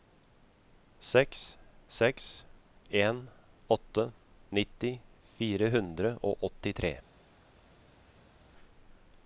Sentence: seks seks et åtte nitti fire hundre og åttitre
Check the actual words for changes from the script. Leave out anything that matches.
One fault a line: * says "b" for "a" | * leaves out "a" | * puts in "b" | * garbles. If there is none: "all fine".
* says "en" for "et"